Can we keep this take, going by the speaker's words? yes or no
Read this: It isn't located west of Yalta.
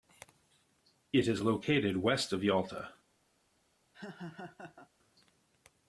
no